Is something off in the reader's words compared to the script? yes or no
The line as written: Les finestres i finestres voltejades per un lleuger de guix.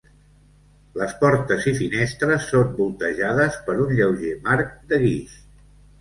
yes